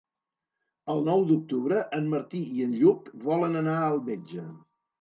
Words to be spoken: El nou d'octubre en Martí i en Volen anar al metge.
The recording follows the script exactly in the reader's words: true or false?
false